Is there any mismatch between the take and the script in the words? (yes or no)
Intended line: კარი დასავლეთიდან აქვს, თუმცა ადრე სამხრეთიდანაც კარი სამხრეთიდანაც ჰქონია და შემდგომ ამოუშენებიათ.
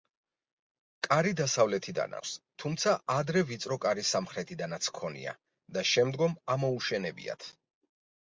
yes